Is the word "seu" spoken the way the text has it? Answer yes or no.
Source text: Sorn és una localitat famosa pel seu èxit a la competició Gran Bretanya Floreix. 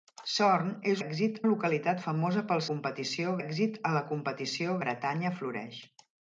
no